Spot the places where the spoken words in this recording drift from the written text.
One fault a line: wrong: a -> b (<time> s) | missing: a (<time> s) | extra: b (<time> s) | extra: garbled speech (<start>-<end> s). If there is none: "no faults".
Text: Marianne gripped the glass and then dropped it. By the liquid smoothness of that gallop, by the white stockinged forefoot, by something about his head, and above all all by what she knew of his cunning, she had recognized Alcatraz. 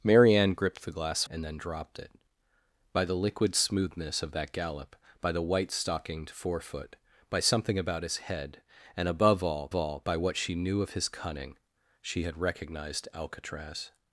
no faults